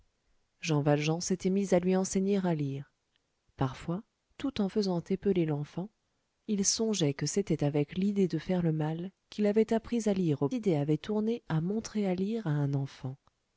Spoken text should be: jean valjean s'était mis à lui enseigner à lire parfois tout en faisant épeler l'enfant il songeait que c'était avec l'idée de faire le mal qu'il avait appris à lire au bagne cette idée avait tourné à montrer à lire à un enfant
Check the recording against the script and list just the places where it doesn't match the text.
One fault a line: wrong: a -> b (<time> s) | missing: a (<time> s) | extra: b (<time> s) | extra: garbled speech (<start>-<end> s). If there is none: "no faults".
missing: bagne cette (10.5 s)